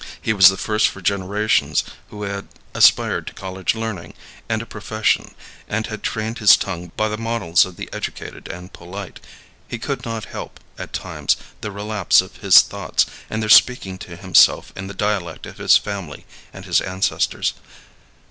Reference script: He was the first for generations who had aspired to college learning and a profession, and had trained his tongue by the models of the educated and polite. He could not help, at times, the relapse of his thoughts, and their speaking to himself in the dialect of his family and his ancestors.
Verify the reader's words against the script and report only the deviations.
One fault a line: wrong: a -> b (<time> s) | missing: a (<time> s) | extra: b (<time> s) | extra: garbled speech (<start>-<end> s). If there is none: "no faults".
no faults